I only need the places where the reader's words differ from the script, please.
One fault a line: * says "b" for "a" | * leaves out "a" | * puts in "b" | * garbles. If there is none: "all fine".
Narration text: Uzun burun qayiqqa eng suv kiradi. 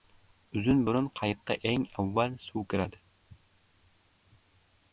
* puts in "avval"